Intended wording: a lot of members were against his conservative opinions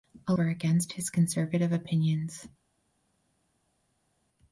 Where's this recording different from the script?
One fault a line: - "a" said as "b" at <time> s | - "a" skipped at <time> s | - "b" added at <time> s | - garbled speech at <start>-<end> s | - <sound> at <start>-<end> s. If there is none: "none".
- "lot of members" skipped at 0.3 s